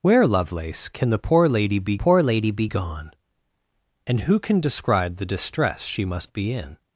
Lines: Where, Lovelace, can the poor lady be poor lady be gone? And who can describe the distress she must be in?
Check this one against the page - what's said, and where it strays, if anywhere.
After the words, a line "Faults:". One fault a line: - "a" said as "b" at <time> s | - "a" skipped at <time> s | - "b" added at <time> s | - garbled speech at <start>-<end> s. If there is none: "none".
Where, Lovelace, can the poor lady be poor lady be gone? And who can describe the distress she must be in?
Faults:
none